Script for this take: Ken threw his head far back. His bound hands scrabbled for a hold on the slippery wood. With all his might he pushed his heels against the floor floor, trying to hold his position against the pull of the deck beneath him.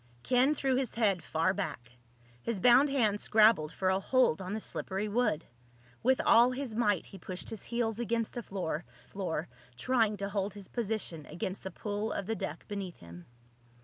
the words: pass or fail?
pass